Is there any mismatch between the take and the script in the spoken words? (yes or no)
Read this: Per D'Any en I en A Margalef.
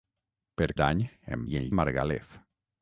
no